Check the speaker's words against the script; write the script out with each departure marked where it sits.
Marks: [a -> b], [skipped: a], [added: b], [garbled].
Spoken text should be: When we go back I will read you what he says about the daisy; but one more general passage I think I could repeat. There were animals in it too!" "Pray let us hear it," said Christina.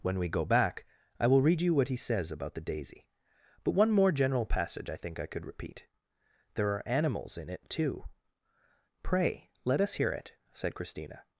When we go back I will read you what he says about the daisy; but one more general passage I think I could repeat. There [were -> are] animals in it too!" "Pray let us hear it," said Christina.